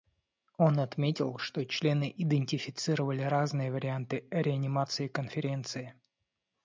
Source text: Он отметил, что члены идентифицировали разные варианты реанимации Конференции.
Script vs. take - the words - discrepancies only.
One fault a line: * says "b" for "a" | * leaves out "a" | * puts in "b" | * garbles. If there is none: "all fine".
all fine